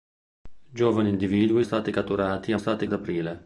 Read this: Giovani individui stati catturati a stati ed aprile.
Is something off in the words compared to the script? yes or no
no